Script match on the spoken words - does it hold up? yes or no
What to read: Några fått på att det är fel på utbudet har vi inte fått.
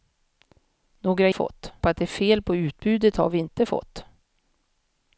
yes